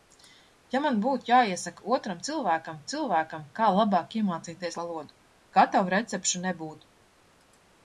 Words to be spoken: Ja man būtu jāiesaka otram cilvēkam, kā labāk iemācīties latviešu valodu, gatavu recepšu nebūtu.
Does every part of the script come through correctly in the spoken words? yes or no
no